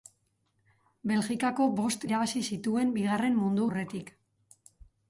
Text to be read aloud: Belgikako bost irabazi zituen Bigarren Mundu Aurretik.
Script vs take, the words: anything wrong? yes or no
no